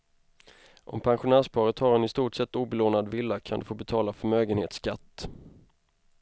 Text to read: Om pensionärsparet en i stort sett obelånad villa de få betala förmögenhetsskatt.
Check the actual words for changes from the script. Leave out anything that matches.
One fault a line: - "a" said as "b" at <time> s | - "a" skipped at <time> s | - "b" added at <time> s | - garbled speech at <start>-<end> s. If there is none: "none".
- "har" added at 1.8 s
- "kan" added at 3.4 s